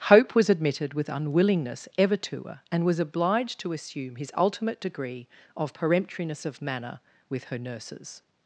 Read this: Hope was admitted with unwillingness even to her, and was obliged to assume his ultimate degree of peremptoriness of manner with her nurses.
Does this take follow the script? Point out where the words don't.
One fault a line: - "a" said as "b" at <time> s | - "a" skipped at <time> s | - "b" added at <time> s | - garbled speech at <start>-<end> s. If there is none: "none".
- "even" said as "ever" at 1.9 s